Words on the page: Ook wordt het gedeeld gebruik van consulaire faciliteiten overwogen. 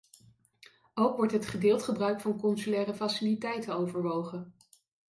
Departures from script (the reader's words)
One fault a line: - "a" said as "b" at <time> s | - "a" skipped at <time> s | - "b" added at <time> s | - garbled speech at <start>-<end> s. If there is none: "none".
none